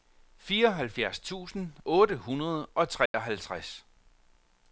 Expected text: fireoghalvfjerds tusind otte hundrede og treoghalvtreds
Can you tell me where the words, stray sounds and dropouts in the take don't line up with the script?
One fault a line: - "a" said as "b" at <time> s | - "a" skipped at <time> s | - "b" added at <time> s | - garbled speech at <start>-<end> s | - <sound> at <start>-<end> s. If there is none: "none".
- dropout at 3.1-3.1 s